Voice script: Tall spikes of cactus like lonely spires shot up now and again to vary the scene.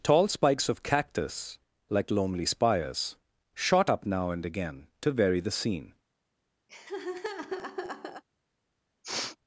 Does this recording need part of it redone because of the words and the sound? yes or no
yes